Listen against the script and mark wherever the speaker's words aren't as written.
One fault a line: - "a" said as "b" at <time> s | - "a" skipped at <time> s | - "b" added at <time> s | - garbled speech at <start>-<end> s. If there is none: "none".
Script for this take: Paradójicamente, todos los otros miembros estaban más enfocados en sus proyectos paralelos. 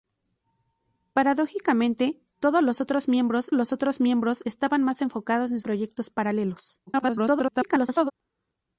- "los otros miembros" added at 3.5 s
- "sus" skipped at 5.6 s
- garbled speech at 6.9-8.1 s